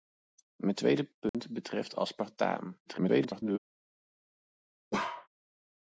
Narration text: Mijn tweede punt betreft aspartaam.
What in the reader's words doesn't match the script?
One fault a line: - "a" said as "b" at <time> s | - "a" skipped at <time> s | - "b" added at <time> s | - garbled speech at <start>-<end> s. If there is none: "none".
- garbled speech at 2.9-3.6 s